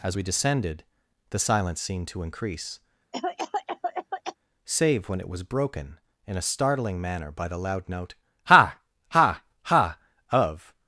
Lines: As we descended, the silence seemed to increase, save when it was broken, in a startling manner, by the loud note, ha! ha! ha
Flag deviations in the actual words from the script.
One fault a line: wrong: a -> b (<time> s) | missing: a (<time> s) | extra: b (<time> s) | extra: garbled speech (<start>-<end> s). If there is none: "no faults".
extra: of (10.3 s)